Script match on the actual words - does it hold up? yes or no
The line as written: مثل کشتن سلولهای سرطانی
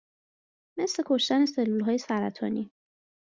yes